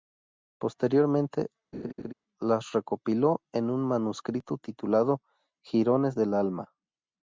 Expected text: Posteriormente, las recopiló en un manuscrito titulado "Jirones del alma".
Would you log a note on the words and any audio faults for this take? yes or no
yes